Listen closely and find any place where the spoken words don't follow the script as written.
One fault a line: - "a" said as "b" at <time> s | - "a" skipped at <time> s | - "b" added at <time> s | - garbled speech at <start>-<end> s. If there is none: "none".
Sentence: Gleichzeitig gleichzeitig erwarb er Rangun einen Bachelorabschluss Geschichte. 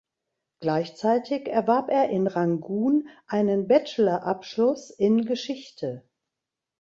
- "gleichzeitig" skipped at 1.5 s
- "in" added at 2.1 s
- "in" added at 4.9 s